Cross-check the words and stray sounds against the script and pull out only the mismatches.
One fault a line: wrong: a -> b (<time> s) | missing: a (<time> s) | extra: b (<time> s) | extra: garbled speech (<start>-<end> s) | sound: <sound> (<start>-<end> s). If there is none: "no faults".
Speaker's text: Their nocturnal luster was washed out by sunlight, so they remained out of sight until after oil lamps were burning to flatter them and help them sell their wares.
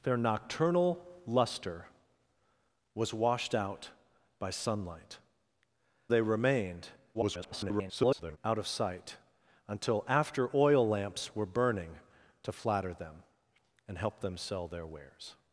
missing: so (5.2 s)
extra: garbled speech (7.1-8.4 s)